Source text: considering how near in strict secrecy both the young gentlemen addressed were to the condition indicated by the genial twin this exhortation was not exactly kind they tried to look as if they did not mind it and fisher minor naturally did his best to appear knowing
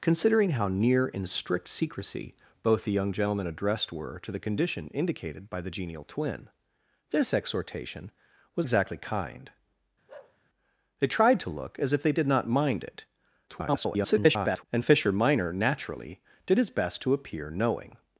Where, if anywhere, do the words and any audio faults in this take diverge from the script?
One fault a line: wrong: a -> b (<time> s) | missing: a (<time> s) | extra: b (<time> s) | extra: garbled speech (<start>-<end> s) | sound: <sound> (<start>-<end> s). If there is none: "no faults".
missing: not (8.7 s)
sound: bark (10.1-10.4 s)
extra: garbled speech (13.5-14.6 s)